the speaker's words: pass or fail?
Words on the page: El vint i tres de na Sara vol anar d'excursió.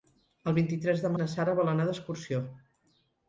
pass